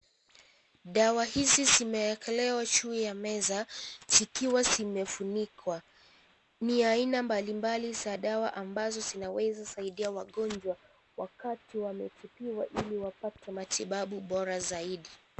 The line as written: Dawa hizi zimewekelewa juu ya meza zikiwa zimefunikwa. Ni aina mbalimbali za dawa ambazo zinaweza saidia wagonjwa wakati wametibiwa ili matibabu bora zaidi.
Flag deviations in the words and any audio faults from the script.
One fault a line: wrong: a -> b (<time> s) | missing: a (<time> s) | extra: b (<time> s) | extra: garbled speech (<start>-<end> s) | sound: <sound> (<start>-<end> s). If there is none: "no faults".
extra: wapate (13.0 s)